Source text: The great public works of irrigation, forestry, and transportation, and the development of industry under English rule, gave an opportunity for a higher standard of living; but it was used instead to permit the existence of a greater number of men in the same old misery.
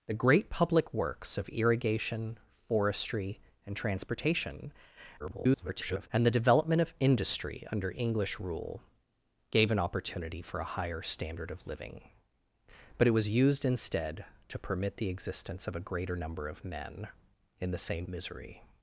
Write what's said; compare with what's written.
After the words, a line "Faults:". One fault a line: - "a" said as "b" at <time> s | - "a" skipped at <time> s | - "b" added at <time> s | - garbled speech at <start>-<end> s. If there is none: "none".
The great public works of irrigation, forestry, and transportation, [garbled] and the development of industry under English rule, gave an opportunity for a higher standard of living; but it was used instead to permit the existence of a greater number of men in the same misery.
Faults:
- garbled speech at 5.2-6.1 s
- "old" skipped at 18.1 s